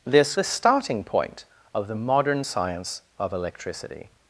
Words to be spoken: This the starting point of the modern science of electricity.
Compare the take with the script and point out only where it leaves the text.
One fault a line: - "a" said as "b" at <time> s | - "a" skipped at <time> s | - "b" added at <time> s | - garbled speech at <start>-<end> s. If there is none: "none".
none